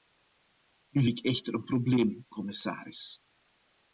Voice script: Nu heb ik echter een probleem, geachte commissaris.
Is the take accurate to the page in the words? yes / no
no